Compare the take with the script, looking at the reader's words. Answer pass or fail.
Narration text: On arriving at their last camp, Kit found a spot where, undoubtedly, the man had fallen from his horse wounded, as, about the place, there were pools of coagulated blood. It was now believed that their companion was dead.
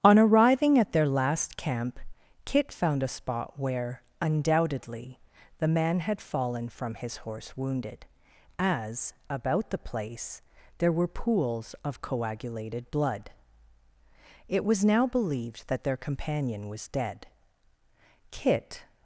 fail